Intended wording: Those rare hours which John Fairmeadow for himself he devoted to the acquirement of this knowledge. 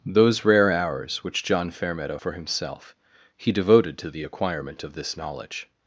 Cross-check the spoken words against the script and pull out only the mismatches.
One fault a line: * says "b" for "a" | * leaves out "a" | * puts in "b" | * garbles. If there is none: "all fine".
all fine